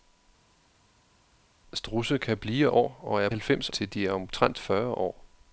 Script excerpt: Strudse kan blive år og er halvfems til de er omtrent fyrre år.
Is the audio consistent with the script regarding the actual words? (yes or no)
yes